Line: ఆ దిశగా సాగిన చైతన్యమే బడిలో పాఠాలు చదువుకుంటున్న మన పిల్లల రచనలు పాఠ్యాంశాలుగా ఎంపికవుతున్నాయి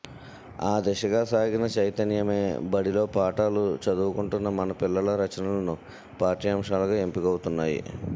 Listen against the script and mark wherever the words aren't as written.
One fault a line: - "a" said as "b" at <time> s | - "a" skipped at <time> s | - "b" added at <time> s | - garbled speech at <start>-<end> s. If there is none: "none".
none